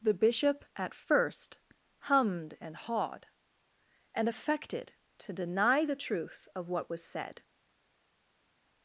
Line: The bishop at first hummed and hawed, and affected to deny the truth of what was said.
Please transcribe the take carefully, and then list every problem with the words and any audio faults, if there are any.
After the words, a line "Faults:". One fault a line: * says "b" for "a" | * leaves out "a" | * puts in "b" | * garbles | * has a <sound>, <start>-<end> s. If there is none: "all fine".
The bishop at first hummed and hawed, and affected to deny the truth of what was said.
Faults:
all fine